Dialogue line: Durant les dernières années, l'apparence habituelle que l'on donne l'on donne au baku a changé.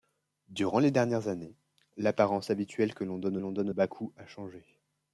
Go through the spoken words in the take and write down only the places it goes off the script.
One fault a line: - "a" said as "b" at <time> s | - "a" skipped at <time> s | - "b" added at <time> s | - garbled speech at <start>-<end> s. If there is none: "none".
none